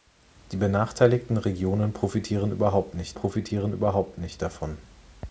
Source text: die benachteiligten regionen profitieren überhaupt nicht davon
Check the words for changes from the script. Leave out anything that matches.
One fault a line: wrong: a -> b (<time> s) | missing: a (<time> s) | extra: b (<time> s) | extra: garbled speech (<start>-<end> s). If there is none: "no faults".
extra: profitieren überhaupt nicht (3.1 s)